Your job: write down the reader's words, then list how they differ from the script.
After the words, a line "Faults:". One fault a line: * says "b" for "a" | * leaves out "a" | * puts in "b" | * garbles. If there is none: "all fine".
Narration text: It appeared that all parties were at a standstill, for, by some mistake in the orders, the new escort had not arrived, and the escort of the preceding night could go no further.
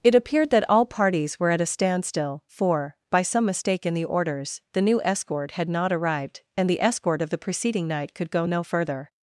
It appeared that all parties were at a standstill, for, by some mistake in the orders, the new escort had not arrived, and the escort of the preceding night could go no further.
Faults:
all fine